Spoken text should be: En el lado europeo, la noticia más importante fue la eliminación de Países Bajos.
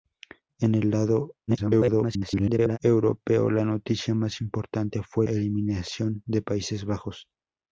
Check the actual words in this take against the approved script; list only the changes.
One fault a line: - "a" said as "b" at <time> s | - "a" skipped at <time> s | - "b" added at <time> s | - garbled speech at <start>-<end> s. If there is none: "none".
- garbled speech at 1.5-2.8 s
- "la" skipped at 5.3 s